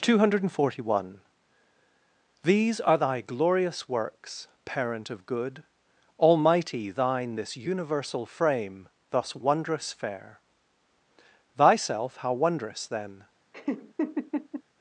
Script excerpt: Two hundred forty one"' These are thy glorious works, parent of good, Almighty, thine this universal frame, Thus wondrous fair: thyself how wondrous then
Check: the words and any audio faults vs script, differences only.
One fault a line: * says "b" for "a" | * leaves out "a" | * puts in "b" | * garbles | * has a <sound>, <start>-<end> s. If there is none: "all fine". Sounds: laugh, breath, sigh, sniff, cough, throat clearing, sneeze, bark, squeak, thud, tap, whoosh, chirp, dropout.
* has a laugh, 13.5-14.6 s